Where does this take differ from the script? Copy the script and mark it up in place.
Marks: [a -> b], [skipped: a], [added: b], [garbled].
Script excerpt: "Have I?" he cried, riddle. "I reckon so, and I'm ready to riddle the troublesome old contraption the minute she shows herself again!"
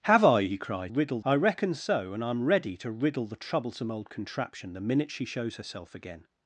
"Have I?" he cried, riddle. "I reckon so, and I'm ready to riddle the troublesome old contraption the minute she shows herself again!"